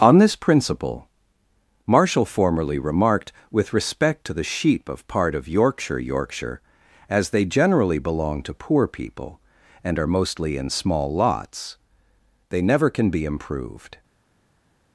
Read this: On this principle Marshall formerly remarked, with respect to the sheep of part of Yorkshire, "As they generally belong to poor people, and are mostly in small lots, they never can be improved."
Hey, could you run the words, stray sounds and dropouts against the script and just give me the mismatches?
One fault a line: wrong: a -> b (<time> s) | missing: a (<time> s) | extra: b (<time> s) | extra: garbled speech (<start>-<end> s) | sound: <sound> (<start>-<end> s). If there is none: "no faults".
extra: Yorkshire (6.0 s)